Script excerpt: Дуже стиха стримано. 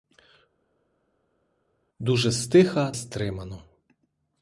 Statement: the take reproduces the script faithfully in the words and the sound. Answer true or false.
true